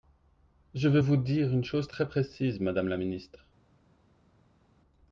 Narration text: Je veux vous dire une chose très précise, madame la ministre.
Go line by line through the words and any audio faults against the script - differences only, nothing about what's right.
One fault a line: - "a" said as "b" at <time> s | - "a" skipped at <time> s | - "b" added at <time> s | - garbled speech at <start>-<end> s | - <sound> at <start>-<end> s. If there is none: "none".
none